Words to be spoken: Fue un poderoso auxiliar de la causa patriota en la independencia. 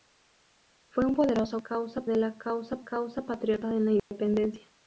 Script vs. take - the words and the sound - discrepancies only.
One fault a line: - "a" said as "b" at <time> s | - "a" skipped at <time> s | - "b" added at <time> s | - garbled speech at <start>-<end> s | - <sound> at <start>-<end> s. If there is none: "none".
- "auxiliar" said as "causa" at 1.6 s
- "causa" added at 2.8 s
- dropout at 4.0-4.1 s